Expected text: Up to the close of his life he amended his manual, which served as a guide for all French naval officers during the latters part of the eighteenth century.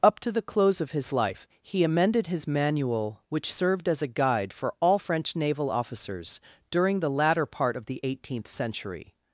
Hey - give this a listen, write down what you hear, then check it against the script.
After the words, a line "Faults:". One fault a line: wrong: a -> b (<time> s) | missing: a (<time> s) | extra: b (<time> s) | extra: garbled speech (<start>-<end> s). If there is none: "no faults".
Up to the close of his life he amended his manual, which served as a guide for all French naval officers during the latter part of the eighteenth century.
Faults:
wrong: latters -> latter (7.1 s)